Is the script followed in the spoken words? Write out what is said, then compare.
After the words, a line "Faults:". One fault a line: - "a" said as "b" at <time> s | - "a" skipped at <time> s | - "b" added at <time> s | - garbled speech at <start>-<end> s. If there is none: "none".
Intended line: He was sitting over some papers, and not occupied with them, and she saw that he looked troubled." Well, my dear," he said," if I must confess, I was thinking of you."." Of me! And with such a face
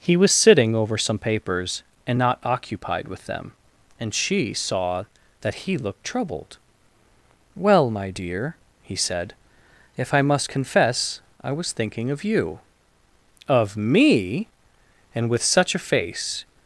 He was sitting over some papers, and not occupied with them, and she saw that he looked troubled." Well, my dear," he said," if I must confess, I was thinking of you."." Of me! And with such a face
Faults:
none